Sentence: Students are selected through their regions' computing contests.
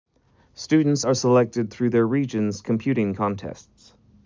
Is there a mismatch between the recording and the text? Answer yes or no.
no